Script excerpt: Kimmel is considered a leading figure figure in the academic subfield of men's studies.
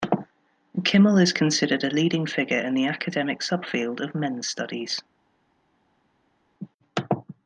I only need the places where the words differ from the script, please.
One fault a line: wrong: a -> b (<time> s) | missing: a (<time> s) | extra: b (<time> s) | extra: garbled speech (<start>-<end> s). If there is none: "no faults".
missing: figure (2.6 s)